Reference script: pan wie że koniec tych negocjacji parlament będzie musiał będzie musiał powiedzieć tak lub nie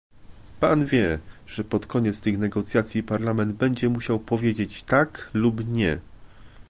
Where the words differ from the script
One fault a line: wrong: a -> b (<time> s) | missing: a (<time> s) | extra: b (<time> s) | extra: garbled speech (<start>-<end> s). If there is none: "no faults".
extra: pod (1.6 s)
missing: będzie musiał (4.2 s)